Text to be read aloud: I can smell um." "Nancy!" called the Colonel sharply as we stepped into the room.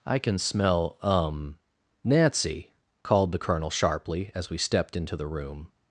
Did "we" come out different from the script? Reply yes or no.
no